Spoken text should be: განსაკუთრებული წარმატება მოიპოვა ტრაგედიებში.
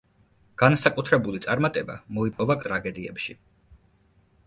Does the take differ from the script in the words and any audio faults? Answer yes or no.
yes